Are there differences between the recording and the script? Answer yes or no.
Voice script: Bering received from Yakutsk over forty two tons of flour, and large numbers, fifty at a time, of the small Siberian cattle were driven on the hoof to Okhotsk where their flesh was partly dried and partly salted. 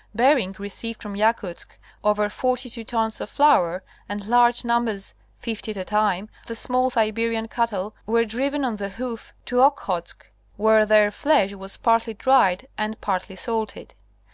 yes